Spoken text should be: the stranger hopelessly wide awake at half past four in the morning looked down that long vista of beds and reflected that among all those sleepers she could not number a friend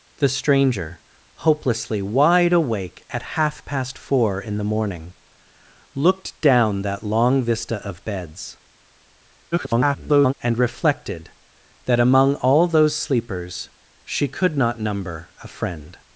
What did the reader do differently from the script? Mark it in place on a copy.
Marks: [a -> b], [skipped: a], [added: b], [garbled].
the stranger hopelessly wide awake at half past four in the morning looked down that long vista of beds [garbled] and reflected that among all those sleepers she could not number a friend